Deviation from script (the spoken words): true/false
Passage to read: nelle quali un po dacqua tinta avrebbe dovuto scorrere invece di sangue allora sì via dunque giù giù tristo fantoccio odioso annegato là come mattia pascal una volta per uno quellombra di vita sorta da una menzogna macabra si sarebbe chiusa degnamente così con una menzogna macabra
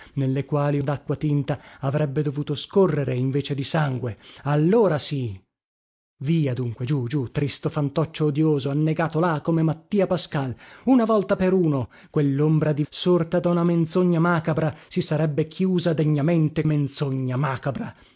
true